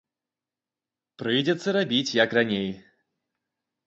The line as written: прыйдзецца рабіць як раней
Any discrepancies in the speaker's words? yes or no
no